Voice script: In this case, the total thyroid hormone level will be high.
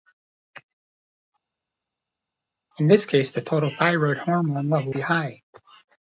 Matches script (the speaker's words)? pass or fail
fail